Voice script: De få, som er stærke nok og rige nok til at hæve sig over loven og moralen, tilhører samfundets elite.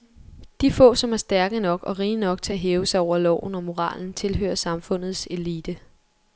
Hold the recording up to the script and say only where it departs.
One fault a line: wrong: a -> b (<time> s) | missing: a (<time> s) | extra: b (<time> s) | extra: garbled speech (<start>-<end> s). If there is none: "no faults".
no faults